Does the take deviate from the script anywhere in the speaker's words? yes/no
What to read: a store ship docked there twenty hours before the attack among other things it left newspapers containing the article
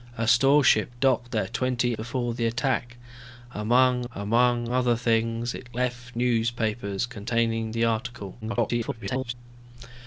yes